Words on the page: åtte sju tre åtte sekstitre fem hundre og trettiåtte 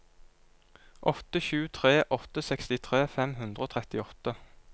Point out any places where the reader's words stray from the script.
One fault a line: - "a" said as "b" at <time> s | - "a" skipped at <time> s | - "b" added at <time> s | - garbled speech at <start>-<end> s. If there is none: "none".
none